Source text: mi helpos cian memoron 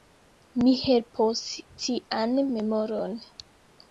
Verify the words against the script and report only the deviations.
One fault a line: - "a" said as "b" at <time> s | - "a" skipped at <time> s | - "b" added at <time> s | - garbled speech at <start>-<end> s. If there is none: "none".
none